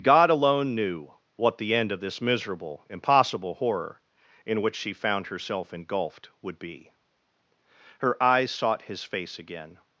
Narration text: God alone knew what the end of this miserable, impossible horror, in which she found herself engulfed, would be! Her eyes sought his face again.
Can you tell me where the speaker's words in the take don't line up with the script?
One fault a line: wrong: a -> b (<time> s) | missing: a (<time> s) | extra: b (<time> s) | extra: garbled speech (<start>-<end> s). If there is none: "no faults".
no faults